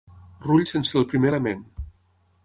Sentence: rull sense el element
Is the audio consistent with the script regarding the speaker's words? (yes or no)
no